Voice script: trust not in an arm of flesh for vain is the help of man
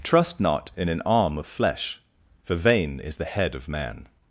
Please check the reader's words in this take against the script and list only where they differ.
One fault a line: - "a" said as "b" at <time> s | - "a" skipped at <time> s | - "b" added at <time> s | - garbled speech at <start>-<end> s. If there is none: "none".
- "help" said as "head" at 3.2 s